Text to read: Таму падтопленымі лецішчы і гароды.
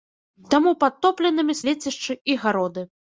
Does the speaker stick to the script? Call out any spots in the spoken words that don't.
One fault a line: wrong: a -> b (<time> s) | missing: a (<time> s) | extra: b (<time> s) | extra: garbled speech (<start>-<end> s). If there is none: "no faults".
no faults